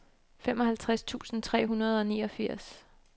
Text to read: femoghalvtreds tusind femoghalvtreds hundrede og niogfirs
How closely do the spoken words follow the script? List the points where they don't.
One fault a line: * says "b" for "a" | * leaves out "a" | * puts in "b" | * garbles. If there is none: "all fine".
* says "tre" for "femoghalvtreds"